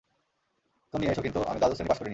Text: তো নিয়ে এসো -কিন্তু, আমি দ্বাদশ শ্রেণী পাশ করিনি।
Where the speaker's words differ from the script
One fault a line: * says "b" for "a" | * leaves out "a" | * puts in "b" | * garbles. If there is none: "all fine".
all fine